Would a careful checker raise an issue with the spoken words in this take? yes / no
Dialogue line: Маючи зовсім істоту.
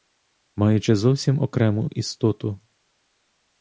yes